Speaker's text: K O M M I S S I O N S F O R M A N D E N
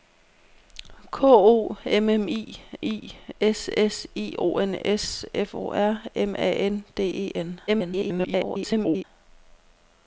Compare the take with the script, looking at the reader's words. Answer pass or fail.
fail